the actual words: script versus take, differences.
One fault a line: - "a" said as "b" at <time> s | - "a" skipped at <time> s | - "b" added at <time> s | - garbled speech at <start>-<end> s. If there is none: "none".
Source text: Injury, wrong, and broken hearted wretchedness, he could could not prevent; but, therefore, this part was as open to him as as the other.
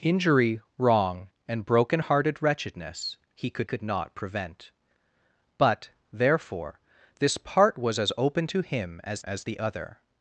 none